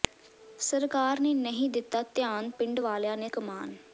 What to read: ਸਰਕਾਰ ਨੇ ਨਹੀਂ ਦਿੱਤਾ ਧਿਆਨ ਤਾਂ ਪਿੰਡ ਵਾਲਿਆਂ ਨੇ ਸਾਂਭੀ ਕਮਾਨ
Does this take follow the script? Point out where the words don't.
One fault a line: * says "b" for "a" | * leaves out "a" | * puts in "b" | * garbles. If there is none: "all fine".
* leaves out "ਤਾਂ"
* leaves out "ਸਾਂਭੀ"